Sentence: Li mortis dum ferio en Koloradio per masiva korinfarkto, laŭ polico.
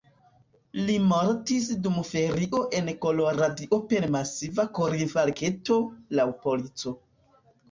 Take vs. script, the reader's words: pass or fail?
pass